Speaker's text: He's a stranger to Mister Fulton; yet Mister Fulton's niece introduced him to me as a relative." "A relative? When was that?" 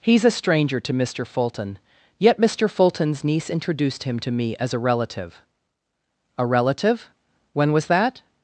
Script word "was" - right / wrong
right